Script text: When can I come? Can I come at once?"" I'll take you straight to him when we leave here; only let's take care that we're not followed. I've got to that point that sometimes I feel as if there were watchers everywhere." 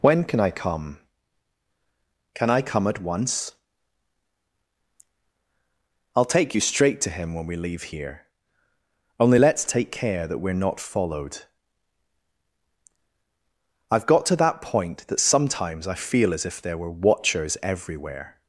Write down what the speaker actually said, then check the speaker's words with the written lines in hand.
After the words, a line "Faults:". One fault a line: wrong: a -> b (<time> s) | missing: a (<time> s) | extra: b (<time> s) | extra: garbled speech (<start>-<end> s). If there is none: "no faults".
When can I come? Can I come at once?"" I'll take you straight to him when we leave here; only let's take care that we're not followed. I've got to that point that sometimes I feel as if there were watchers everywhere."
Faults:
no faults